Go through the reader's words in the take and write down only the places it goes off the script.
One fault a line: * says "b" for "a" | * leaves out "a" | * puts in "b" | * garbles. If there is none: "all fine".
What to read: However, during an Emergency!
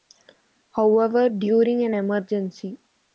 all fine